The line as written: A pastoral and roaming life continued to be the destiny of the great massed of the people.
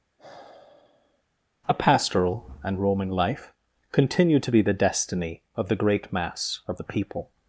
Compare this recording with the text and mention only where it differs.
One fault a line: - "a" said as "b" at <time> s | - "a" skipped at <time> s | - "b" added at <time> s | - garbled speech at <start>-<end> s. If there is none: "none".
- "massed" said as "mass" at 6.1 s